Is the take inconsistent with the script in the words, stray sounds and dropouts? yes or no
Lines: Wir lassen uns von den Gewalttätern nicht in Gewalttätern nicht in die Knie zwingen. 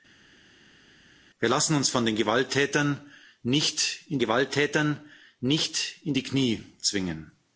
no